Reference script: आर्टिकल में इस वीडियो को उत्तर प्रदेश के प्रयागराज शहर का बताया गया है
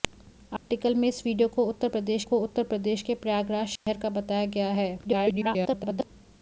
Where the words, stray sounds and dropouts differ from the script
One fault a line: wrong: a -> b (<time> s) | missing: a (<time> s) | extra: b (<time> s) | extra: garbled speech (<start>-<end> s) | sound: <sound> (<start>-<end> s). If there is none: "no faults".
sound: dropout (0.6-0.7 s)
extra: को उत्तर प्रदेश (2.2 s)
sound: dropout (3.8-3.9 s)
extra: garbled speech (5.0-6.1 s)